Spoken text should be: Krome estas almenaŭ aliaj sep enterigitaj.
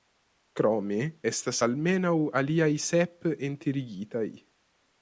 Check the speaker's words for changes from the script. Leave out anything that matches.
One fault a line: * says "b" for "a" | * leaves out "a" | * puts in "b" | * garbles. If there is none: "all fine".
all fine